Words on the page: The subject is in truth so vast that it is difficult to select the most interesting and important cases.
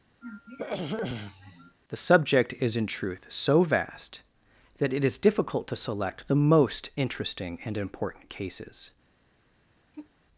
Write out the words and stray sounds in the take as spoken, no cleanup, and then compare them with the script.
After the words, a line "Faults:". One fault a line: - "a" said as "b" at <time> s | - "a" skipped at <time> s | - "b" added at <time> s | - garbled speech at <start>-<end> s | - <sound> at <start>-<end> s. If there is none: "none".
The subject is in truth so vast that it is difficult to select the most interesting and important cases.
Faults:
- throat clearing at 0.2-1.8 s
- sigh at 9.9-10.1 s